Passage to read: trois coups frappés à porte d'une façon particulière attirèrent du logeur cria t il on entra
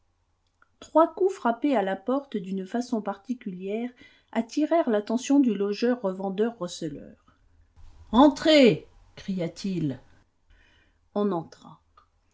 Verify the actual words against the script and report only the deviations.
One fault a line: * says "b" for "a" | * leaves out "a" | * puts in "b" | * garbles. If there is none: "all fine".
* puts in "la"
* puts in "l'attention"
* puts in "revendeur receleur entrez"